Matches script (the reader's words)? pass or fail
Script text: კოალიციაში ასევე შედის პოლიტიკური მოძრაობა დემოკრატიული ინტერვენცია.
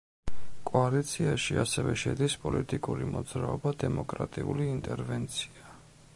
pass